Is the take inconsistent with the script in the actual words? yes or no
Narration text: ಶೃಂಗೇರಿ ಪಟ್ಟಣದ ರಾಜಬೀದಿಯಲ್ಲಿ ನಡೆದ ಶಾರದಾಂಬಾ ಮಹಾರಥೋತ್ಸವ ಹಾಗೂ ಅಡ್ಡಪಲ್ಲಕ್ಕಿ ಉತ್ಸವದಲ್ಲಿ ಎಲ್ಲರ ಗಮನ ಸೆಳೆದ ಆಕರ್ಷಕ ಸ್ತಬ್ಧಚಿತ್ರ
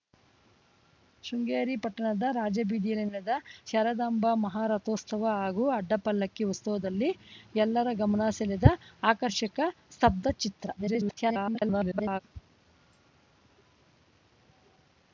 yes